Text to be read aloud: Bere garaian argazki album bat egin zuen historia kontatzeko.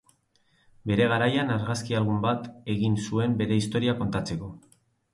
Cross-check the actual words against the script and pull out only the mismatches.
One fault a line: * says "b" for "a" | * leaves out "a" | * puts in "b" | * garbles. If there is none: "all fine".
* puts in "bere"